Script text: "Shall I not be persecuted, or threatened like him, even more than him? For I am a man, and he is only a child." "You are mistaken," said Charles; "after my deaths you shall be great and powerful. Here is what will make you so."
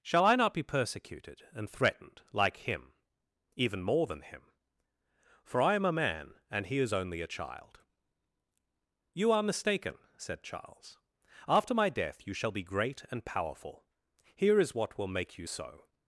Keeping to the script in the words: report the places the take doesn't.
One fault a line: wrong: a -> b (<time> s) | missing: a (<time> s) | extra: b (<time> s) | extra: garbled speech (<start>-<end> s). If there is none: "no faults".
wrong: or -> and (1.5 s)
wrong: deaths -> death (11.9 s)